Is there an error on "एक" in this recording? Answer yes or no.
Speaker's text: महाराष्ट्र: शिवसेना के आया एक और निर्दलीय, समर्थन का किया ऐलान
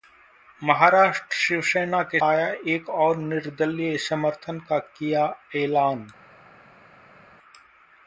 no